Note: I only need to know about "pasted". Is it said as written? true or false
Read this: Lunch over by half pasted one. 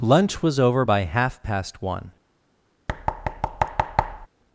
false